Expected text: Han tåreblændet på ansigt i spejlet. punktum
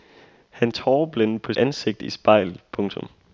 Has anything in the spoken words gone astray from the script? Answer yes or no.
no